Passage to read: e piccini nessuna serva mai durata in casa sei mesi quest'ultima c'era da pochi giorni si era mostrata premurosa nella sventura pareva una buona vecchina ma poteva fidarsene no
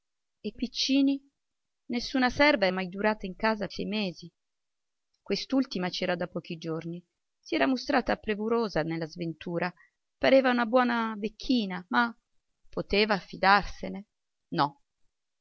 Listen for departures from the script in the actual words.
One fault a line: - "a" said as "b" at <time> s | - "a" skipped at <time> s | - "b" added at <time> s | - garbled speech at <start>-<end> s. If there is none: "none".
none